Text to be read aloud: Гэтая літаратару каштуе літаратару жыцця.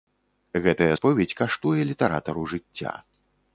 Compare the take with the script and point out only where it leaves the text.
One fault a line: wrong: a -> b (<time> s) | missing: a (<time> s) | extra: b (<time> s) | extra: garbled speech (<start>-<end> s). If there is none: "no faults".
wrong: літаратару -> споведзь (1.0 s)